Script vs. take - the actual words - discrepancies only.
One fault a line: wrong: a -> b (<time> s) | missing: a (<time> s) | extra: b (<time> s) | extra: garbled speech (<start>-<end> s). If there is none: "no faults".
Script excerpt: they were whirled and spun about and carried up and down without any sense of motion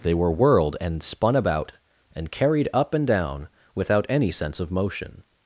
no faults